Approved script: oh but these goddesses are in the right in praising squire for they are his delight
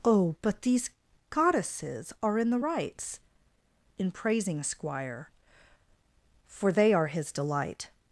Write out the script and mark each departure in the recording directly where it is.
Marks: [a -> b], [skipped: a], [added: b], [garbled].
oh but these goddesses are in the [right -> rights] in praising squire for they are his delight